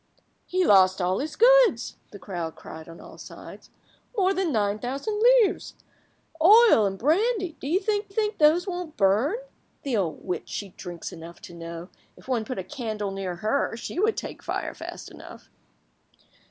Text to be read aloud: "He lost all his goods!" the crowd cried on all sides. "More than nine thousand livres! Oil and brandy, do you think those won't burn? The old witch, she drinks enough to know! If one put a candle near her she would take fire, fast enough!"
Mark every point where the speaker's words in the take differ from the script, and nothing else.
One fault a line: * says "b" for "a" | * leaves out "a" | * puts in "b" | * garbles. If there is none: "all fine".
* puts in "think"